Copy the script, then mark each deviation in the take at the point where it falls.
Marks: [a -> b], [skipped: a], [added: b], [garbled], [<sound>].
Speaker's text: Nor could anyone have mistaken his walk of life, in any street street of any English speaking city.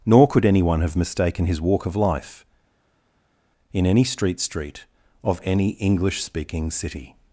Nor could anyone have mistaken his walk of life, in any street street of any English speaking city.